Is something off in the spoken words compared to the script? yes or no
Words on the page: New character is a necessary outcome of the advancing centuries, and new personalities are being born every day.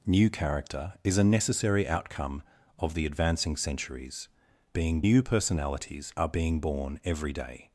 yes